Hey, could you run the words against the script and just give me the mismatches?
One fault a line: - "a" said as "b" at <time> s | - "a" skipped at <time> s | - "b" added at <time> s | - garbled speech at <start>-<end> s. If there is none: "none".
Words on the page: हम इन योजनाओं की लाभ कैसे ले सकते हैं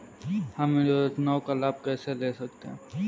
- "की" said as "का" at 1.4 s